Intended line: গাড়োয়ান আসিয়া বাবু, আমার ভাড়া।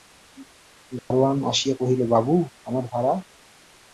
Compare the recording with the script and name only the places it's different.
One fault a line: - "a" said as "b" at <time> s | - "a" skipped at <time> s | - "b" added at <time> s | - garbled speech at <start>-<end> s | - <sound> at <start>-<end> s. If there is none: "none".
- dropout at 1.0-1.1 s
- "কহিল" added at 1.8 s